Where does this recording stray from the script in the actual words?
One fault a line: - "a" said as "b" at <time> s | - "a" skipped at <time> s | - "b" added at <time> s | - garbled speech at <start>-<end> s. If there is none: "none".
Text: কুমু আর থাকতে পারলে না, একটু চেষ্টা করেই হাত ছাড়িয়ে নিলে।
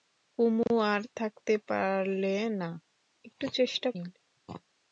- "করেই হাত ছাড়িয়ে" skipped at 3.9 s